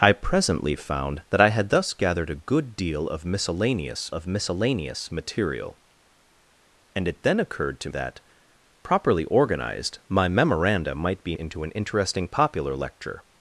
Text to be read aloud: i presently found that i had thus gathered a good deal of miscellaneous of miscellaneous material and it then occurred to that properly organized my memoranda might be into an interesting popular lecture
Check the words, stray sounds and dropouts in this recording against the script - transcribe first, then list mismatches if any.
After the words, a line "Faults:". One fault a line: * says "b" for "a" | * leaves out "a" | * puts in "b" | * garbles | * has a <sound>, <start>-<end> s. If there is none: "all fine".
i presently found that i had thus gathered a good deal of miscellaneous of miscellaneous material and it then occurred to that properly organized my memoranda might be into an interesting popular lecture
Faults:
all fine